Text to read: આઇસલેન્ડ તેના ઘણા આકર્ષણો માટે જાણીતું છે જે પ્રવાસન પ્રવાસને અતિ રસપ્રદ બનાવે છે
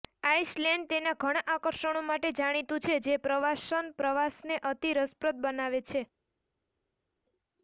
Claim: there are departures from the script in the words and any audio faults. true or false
false